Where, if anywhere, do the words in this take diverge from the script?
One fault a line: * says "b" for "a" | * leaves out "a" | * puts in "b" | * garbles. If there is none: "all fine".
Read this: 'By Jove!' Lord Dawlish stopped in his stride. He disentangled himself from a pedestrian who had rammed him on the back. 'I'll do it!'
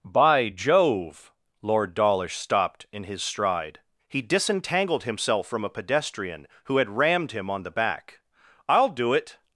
all fine